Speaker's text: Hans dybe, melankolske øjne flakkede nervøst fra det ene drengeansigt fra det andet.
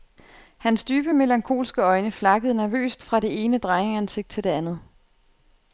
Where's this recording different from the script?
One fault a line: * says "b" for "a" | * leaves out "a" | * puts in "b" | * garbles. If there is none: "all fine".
* says "til" for "fra"